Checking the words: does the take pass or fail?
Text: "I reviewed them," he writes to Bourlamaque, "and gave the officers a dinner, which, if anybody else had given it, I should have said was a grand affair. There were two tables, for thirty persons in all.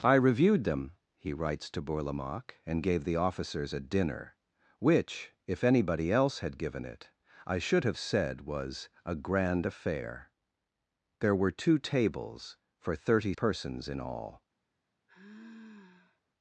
pass